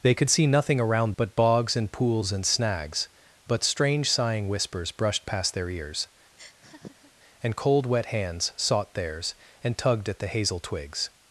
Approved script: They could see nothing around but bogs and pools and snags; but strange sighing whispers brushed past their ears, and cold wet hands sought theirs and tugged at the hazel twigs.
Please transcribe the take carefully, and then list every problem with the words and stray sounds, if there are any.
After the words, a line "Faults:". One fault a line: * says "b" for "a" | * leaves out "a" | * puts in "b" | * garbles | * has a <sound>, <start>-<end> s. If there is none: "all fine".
They could see nothing around but bogs and pools and snags; but strange sighing whispers brushed past their ears, and cold wet hands sought theirs and tugged at the hazel twigs.
Faults:
* has a laugh, 6.4-7.1 s